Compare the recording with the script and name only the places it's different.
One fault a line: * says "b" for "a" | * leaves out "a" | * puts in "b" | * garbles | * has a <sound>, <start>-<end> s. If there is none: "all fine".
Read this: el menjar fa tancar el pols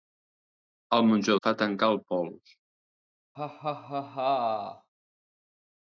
* has a laugh, 3.3-4.9 s